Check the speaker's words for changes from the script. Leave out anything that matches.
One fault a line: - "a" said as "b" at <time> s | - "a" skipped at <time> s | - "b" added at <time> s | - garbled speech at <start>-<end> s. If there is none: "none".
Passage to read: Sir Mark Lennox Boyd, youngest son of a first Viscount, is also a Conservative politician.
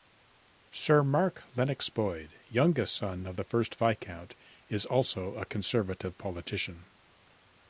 - "a" said as "the" at 3.3 s